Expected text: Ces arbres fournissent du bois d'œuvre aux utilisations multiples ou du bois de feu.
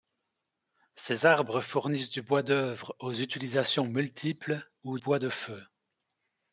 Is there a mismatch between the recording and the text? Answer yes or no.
yes